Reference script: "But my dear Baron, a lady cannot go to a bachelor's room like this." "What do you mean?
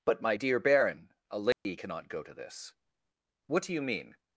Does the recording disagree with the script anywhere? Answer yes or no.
yes